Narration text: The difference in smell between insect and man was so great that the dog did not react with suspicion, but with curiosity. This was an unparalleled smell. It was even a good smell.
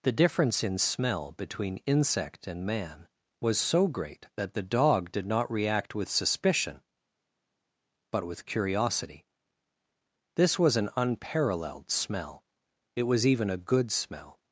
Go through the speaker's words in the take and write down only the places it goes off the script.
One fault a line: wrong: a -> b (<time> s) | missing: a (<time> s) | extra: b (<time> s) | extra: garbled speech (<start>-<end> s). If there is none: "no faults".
no faults